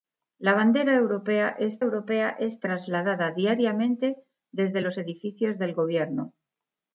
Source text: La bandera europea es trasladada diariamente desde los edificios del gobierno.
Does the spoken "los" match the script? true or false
true